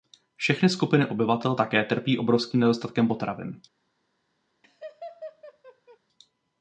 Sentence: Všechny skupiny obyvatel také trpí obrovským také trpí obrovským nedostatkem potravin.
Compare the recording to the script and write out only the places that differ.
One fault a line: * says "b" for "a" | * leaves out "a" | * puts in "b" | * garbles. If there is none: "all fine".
* leaves out "také trpí obrovským"